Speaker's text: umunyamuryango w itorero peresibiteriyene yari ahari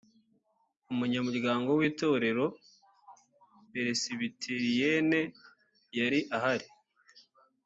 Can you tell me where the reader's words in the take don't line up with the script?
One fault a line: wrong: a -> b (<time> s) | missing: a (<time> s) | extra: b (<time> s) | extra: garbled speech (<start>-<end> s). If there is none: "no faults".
no faults